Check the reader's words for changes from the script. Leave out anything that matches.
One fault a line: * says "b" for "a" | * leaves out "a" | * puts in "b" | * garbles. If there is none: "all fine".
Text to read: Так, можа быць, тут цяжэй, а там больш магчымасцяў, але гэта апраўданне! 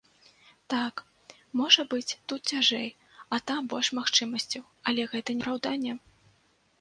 all fine